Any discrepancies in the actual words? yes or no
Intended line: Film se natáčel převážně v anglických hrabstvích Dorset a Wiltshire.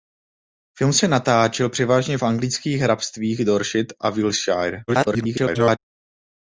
yes